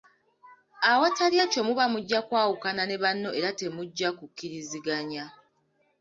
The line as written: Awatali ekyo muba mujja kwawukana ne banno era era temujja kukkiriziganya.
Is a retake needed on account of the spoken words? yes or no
yes